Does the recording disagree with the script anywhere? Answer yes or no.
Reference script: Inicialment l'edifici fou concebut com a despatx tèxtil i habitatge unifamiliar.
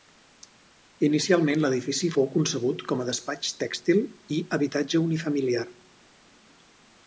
no